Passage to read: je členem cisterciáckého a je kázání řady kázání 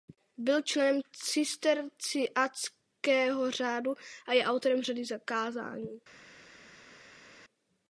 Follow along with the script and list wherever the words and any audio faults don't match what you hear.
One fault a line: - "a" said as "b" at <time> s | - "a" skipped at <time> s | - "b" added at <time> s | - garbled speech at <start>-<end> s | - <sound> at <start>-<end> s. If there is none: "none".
- "je" said as "byl" at 0.4 s
- "řádu" added at 3.5 s
- "kázání" said as "autorem" at 4.5 s